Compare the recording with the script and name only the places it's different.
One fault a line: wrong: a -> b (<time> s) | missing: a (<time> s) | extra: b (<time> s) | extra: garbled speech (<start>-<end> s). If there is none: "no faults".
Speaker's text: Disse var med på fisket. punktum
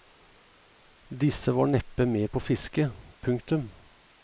extra: neppe (1.6 s)